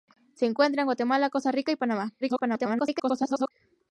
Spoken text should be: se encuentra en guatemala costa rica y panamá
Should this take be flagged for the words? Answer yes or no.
yes